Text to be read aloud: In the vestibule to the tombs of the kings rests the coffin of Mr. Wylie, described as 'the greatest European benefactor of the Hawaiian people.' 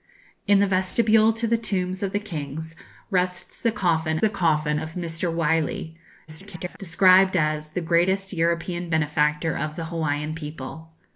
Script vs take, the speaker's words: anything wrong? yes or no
yes